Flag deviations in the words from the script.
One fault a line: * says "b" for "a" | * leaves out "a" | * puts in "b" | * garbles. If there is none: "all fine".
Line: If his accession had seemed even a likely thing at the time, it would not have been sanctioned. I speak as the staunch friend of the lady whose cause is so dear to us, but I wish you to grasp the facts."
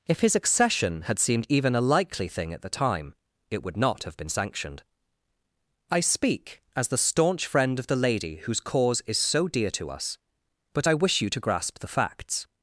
all fine